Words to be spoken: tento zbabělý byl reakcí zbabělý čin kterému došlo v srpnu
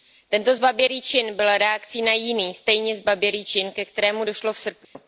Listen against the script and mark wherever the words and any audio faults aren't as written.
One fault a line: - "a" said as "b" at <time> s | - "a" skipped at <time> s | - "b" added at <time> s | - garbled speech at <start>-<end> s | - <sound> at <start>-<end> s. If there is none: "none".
- "čin" added at 1.0 s
- "na jiný stejně" added at 2.0 s
- "ke" added at 3.7 s
- dropout at 4.8-5.0 s